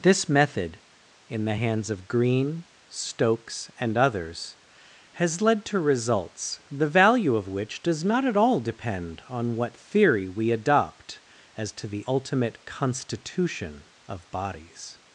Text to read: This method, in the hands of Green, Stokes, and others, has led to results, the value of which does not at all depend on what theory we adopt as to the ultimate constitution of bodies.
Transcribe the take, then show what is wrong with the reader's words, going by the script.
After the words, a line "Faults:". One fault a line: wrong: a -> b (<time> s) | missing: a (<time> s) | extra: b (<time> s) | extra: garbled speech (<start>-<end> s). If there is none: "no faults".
This method, in the hands of Green, Stokes, and others, has led to results, the value of which does not at all depend on what theory we adopt as to the ultimate constitution of bodies.
Faults:
no faults